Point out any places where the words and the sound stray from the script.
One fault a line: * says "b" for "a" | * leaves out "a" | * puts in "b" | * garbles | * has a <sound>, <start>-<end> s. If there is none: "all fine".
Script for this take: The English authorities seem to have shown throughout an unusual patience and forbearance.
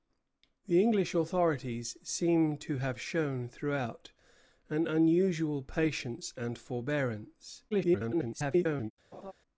* garbles
* has a laugh, 9.1-9.3 s